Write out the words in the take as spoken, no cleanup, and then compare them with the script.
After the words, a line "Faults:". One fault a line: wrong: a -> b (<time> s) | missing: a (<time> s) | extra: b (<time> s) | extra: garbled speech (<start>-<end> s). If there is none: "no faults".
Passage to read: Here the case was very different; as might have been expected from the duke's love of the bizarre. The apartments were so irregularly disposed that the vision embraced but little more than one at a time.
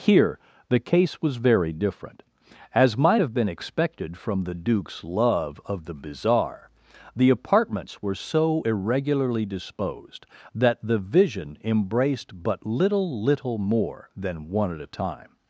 Here the case was very different; as might have been expected from the duke's love of the bizarre. The apartments were so irregularly disposed that the vision embraced but little little more than one at a time.
Faults:
extra: little (13.2 s)